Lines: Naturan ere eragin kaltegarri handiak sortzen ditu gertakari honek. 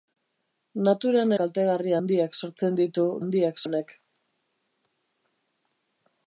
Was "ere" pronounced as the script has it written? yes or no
no